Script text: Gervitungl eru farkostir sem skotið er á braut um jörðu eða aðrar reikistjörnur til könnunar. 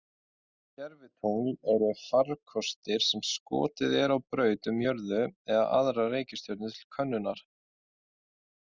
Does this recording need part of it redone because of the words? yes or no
no